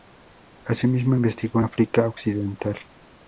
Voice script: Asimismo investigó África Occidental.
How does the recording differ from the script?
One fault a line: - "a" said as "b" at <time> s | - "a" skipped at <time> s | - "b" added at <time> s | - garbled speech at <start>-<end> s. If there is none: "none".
none